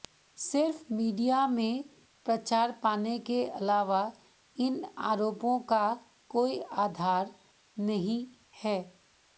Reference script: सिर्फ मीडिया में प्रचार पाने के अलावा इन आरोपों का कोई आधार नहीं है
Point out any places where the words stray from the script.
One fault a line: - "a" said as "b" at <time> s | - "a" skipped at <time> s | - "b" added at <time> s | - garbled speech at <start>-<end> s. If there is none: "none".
none